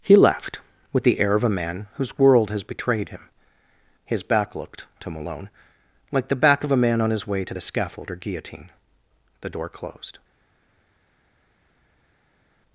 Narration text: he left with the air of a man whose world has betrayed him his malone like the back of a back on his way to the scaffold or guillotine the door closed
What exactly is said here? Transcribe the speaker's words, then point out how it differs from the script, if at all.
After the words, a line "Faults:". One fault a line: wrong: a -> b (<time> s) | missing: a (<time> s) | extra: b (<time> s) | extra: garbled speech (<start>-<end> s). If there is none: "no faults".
he left with the air of a man whose world has betrayed him his back looked to malone like the back of a man on his way to the scaffold or guillotine the door closed
Faults:
extra: back looked to (4.2 s)
wrong: back -> man (6.8 s)